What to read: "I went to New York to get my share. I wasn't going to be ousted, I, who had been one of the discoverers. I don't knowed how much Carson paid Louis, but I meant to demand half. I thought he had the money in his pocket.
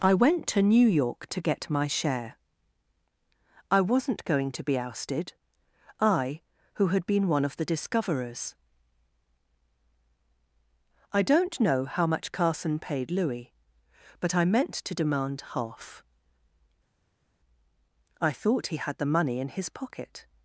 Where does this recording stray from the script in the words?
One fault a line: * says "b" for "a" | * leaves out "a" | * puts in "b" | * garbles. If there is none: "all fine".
* says "know" for "knowed"